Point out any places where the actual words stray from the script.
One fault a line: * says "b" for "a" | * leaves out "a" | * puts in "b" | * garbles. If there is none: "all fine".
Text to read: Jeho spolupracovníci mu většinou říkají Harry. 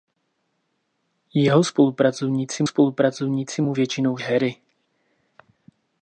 * puts in "spolupracovníci"
* leaves out "říkají"